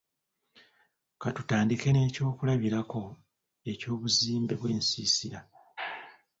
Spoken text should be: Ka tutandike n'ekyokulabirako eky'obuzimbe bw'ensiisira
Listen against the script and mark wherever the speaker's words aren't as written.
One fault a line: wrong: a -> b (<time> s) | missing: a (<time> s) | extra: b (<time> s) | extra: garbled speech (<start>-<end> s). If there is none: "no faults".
no faults